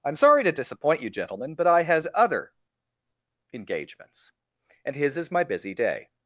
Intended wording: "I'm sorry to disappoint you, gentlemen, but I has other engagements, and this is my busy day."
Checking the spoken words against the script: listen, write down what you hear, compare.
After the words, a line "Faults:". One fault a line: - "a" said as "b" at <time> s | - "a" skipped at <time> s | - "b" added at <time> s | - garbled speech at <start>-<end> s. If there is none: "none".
"I'm sorry to disappoint you, gentlemen, but I has other engagements, and his is my busy day."
Faults:
- "this" said as "his" at 4.9 s